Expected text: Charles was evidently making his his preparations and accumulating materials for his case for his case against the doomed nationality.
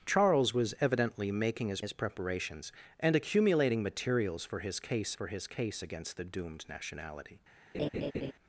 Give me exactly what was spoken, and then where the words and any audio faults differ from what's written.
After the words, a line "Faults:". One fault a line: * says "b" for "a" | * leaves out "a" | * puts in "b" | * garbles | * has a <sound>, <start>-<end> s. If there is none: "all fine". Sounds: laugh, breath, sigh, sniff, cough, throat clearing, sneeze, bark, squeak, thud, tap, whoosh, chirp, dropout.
Charles was evidently making his his preparations and accumulating materials for his case for his case against the doomed nationality.
Faults:
* has a laugh, 7.7-8.3 s